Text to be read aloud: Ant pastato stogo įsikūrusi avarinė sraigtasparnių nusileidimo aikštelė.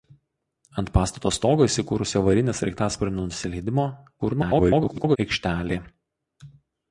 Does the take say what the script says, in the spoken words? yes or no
no